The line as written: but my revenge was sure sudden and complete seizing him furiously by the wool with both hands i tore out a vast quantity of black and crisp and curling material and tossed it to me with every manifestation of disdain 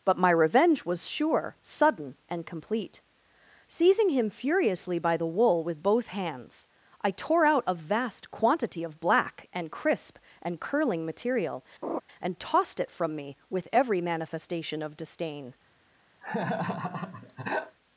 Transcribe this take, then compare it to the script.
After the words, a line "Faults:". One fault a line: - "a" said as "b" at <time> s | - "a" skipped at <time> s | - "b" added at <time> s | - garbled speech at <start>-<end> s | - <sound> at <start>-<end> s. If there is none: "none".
but my revenge was sure sudden and complete seizing him furiously by the wool with both hands i tore out a vast quantity of black and crisp and curling material and tossed it from me with every manifestation of disdain
Faults:
- laugh at 11.8-12.0 s
- "to" said as "from" at 12.9 s
- laugh at 16.2-17.8 s